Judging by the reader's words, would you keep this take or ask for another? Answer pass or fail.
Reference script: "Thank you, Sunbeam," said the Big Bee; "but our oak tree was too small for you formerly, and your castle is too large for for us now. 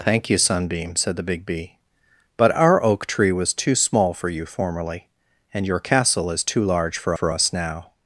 pass